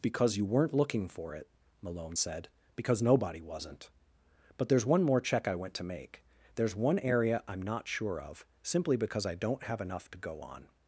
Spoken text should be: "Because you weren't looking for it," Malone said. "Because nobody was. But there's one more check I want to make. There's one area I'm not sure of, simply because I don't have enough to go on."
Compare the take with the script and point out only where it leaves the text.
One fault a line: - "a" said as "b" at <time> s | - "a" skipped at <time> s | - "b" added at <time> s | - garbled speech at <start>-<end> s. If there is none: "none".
- "was" said as "wasn't" at 3.4 s
- "want" said as "went" at 5.5 s